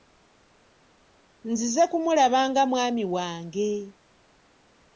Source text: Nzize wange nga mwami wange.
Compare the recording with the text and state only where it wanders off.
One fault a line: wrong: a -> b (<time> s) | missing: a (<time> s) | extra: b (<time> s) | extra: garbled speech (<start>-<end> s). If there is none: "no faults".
wrong: wange -> kumulaba (1.9 s)